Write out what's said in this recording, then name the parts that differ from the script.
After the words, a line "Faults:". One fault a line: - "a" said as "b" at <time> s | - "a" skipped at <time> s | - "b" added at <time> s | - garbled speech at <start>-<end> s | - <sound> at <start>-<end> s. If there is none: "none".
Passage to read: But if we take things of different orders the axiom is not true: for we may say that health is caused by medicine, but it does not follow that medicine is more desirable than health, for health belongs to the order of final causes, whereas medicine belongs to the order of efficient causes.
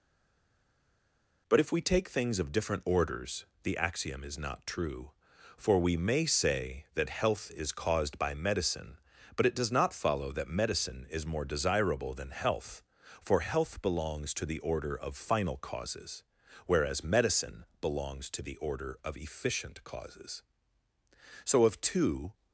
But if we take things of different orders the axiom is not true: for we may say that health is caused by medicine, but it does not follow that medicine is more desirable than health, for health belongs to the order of final causes, whereas medicine belongs to the order of efficient causes. So of two
Faults:
- "So of two" added at 21.4 s